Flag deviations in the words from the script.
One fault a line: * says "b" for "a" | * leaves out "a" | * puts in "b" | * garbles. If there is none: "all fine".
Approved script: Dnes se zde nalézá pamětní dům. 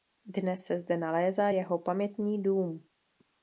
* puts in "jeho"